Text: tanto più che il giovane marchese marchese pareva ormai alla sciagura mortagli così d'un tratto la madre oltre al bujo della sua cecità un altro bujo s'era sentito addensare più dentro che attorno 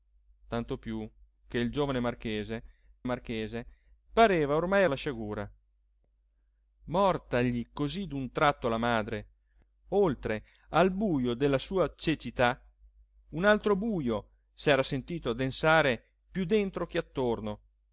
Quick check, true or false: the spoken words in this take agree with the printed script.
true